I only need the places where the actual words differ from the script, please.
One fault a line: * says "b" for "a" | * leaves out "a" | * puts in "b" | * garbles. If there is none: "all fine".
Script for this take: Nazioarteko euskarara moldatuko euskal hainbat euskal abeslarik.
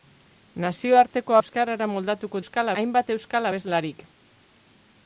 all fine